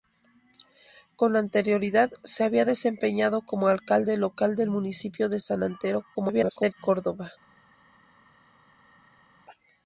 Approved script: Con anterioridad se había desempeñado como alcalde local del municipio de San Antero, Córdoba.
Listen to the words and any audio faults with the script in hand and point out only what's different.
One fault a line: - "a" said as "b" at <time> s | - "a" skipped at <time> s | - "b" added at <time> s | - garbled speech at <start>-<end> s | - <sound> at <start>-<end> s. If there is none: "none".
- garbled speech at 6.1-6.7 s